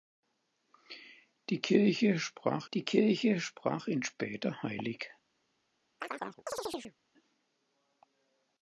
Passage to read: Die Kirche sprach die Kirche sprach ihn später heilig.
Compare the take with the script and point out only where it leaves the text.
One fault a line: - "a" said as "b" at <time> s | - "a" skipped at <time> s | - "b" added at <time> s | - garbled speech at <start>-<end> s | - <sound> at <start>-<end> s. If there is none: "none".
- chirp at 6.0-7.0 s